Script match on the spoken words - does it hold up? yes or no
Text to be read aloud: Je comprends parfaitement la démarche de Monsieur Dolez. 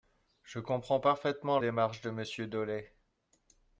no